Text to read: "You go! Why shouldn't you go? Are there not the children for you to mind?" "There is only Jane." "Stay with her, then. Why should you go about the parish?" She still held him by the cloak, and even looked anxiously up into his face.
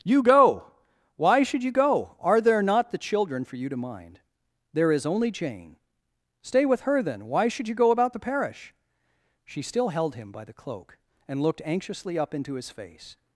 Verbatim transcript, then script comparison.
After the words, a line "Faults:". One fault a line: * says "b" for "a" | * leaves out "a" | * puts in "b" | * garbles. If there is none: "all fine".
"You go! Why should you go? Are there not the children for you to mind?" "There is only Jane." "Stay with her, then. Why should you go about the parish?" She still held him by the cloak, and looked anxiously up into his face.
Faults:
* says "should" for "shouldn't"
* leaves out "even"